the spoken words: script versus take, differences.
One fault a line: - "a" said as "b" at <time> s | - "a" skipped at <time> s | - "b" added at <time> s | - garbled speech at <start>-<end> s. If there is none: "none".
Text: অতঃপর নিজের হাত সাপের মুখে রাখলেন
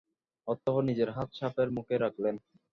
none